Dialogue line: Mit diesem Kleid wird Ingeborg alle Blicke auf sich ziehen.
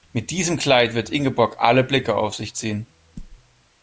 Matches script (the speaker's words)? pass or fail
pass